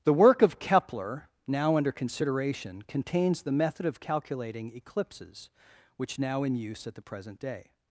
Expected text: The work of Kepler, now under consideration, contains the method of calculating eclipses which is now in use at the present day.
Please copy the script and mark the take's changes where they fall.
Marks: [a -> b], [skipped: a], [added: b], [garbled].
The work of Kepler, now under consideration, contains the method of calculating eclipses which [skipped: is] now in use at the present day.